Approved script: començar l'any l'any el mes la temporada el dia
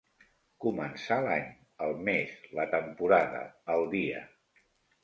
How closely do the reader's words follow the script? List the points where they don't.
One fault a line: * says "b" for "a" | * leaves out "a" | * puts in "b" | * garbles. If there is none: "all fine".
* leaves out "l'any"